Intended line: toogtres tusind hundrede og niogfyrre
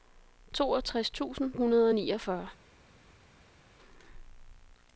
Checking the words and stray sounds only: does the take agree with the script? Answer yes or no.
yes